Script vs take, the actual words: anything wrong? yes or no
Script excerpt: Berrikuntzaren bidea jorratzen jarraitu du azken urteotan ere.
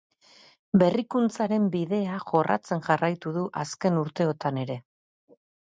no